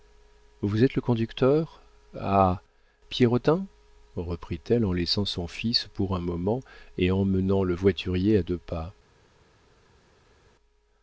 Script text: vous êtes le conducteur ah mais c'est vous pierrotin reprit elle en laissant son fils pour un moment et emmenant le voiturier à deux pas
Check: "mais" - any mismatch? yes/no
yes